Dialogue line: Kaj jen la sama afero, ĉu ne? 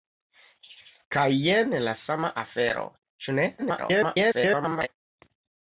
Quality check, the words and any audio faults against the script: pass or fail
fail